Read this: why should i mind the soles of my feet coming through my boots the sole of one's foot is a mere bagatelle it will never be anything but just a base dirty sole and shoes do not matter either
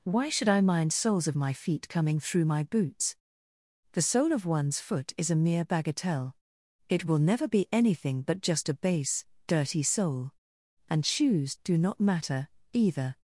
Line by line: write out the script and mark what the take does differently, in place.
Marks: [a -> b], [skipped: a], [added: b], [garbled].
why should i mind [skipped: the] soles of my feet coming through my boots the sole of one's foot is a mere bagatelle it will never be anything but just a base dirty sole and shoes do not matter either